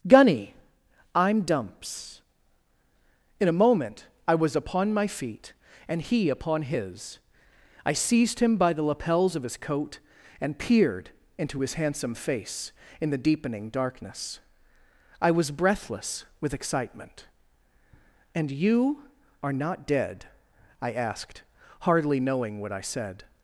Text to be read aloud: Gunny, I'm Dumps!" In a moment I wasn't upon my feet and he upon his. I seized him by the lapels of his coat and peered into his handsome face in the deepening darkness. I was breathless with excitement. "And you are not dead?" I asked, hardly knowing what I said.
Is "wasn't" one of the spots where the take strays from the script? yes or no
yes